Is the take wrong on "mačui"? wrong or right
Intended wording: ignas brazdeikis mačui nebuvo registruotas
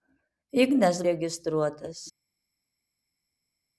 wrong